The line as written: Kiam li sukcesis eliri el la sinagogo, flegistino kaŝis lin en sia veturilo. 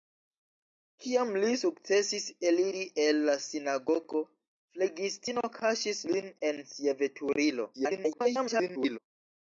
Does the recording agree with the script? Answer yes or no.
no